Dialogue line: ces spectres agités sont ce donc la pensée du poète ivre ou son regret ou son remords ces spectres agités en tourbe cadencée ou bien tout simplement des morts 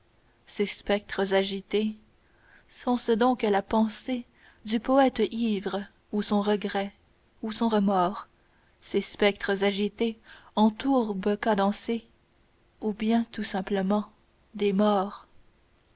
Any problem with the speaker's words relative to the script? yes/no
no